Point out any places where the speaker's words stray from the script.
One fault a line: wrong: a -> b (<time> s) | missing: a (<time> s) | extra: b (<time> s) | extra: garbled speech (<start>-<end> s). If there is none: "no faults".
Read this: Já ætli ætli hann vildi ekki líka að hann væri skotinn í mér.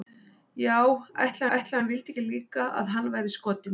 no faults